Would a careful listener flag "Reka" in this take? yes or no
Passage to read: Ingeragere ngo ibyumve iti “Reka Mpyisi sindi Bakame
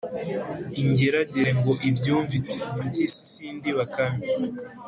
yes